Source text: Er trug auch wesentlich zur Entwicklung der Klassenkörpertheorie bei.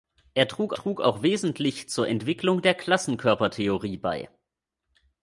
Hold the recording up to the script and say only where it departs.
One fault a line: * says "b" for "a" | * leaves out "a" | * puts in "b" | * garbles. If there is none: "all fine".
* puts in "trug"